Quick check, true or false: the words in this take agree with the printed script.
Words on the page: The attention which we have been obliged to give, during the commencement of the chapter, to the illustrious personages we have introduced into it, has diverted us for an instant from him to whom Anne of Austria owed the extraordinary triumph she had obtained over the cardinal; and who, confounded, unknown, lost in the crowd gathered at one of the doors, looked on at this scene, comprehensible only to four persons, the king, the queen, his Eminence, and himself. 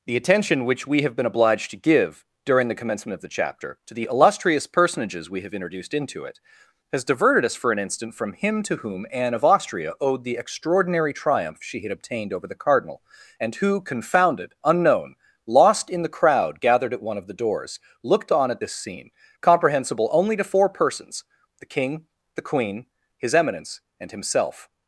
true